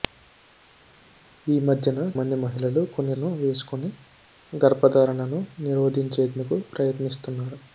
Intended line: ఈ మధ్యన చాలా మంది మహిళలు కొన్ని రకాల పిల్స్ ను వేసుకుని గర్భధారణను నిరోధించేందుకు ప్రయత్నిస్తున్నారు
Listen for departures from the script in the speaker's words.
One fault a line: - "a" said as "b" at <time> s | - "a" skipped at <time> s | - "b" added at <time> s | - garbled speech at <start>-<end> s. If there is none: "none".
- "చాలా" skipped at 2.0 s
- "రకాల పిల్స్" skipped at 3.1 s